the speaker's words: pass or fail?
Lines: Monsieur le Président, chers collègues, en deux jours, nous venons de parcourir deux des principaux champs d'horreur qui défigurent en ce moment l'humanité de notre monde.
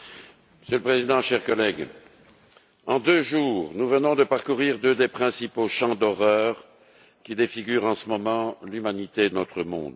fail